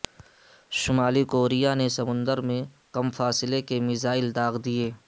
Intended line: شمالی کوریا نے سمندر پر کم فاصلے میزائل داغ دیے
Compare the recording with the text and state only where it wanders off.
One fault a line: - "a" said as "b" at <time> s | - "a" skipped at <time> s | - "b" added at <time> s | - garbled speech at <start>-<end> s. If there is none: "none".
- "پر" said as "میں" at 2.5 s
- "کے" added at 3.7 s